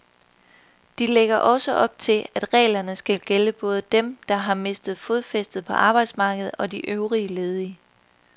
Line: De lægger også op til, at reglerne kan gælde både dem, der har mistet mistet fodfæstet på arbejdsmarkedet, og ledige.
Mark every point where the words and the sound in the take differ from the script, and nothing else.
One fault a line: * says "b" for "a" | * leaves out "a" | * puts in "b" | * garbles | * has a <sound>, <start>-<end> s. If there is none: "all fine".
* says "skal" for "kan"
* leaves out "mistet"
* puts in "de øvrige"